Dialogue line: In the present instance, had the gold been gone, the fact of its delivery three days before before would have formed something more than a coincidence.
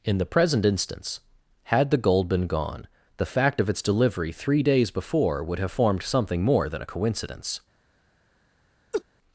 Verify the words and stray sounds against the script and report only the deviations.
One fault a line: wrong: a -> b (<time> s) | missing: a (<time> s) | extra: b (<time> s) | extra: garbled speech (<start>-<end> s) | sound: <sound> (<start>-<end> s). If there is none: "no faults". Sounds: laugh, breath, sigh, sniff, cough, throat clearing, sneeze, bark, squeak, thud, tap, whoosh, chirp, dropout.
missing: before (5.4 s)
sound: laugh (8.9-9.0 s)